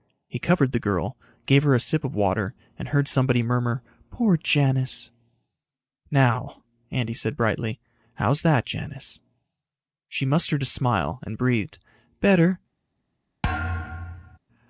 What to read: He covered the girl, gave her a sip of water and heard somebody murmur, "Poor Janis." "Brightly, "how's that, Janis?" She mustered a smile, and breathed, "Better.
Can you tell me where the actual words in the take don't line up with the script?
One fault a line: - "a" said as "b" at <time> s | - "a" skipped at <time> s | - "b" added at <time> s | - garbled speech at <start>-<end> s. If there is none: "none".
- "Now Andy said" added at 6.1 s